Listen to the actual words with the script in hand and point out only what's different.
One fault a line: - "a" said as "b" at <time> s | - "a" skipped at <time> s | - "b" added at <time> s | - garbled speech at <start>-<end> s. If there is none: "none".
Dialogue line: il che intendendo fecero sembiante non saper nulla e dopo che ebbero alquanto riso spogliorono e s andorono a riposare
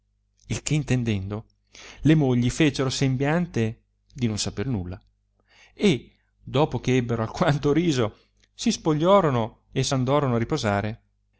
- "le mogli" added at 2.0 s
- "di" added at 4.1 s
- "si" added at 8.5 s